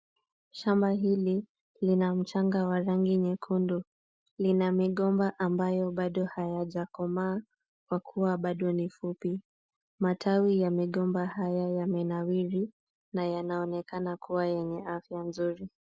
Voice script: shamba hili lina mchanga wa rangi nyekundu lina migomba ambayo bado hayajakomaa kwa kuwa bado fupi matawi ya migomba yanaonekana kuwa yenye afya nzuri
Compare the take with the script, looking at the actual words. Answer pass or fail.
fail